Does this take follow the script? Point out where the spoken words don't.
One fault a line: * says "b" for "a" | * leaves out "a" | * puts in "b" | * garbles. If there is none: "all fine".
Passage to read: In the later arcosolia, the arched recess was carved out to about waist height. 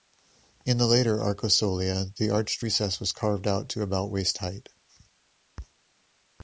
all fine